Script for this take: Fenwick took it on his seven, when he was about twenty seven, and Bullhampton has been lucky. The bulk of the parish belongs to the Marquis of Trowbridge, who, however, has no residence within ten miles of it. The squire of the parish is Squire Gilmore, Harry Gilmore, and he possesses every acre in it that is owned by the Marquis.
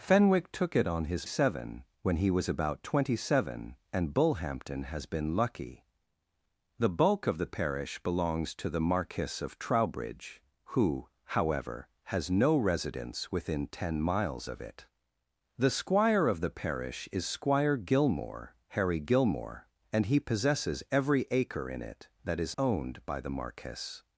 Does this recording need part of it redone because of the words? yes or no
no